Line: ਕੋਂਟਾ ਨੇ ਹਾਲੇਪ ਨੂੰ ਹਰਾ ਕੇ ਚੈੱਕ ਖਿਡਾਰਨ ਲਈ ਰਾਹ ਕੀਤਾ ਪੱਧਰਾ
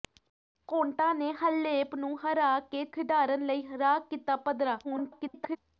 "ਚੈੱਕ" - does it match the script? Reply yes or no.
no